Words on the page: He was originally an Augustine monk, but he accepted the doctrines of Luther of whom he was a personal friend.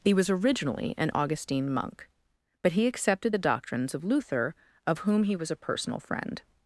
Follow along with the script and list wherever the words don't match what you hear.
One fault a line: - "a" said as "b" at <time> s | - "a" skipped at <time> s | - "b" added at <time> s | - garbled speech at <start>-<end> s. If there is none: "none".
none